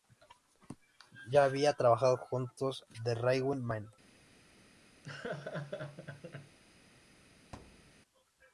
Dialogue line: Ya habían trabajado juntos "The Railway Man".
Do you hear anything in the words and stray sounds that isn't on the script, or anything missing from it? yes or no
yes